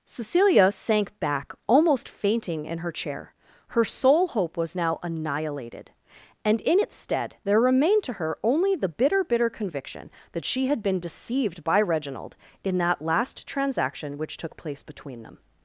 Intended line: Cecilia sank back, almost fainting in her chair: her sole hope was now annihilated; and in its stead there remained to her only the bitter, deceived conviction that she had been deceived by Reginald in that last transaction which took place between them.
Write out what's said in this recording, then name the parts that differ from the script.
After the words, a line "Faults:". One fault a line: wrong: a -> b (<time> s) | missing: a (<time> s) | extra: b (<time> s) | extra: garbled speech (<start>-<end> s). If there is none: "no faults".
Cecilia sank back, almost fainting in her chair: her sole hope was now annihilated; and in its stead there remained to her only the bitter, bitter conviction that she had been deceived by Reginald in that last transaction which took place between them.
Faults:
wrong: deceived -> bitter (9.2 s)